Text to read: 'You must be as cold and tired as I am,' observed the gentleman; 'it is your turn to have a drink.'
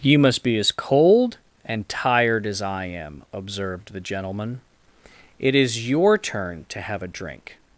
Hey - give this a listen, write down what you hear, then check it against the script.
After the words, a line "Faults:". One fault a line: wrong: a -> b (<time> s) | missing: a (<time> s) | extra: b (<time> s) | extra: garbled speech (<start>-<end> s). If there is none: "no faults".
'You must be as cold and tired as I am,' observed the gentleman; 'it is your turn to have a drink.'
Faults:
no faults